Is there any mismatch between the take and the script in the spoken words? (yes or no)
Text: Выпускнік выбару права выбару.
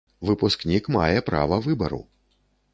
yes